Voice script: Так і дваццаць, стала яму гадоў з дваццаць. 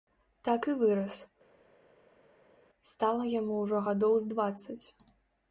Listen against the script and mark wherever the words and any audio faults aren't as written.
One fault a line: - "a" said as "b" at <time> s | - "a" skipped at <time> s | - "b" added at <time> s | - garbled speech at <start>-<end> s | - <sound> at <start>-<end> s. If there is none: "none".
- "дваццаць" said as "вырас" at 0.8 s
- "ўжо" added at 3.6 s